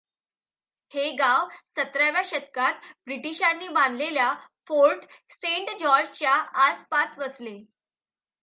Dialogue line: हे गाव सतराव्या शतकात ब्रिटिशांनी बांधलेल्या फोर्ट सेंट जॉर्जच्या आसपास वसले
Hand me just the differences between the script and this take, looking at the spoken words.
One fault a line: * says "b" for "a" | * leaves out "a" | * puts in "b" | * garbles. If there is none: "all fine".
all fine